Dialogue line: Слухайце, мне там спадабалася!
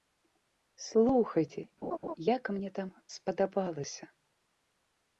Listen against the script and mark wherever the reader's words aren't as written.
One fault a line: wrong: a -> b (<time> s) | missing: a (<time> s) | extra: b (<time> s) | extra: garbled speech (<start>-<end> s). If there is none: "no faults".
extra: як (2.3 s)